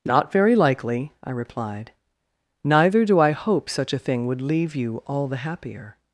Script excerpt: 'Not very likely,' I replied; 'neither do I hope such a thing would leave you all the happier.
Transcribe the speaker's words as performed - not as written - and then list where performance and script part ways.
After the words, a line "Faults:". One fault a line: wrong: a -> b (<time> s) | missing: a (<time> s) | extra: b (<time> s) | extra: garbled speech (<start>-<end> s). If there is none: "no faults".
'Not very likely,' I replied; 'neither do I hope such a thing would leave you all the happier.
Faults:
no faults